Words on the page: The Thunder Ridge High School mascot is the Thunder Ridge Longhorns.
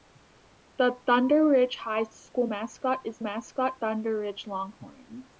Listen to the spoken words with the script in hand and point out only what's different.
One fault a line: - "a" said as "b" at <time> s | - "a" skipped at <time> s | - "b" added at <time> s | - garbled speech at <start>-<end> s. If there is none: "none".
- "the" said as "mascot" at 3.2 s